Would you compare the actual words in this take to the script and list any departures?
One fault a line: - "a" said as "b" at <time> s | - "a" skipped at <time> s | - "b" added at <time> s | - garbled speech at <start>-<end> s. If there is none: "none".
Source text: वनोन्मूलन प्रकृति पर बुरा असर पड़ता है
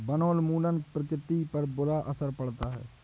none